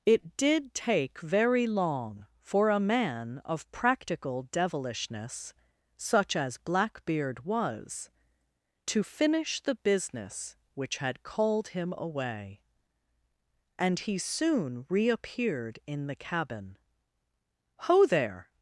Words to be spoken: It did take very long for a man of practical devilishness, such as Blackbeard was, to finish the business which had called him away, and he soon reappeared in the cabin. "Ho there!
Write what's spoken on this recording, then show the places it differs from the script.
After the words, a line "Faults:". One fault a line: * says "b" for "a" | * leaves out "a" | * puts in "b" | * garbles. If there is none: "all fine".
It did take very long for a man of practical devilishness, such as Blackbeard was, to finish the business which had called him away, and he soon reappeared in the cabin. "Ho there!
Faults:
all fine